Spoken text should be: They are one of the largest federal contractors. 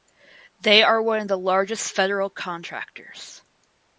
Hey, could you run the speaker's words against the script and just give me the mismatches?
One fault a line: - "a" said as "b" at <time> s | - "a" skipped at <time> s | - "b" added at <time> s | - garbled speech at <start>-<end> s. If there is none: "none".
none